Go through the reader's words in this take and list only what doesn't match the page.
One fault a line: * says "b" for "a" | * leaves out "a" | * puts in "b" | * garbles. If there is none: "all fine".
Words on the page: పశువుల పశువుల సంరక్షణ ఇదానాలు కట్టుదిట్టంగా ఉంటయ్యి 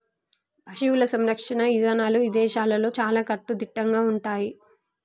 * leaves out "పశువుల"
* puts in "ఇదేశాల్లో చాలా"